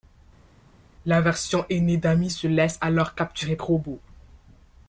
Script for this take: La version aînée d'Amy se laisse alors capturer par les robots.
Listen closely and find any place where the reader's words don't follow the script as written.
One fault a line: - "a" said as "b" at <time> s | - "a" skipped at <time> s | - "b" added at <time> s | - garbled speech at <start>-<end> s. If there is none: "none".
- "par les" skipped at 3.6 s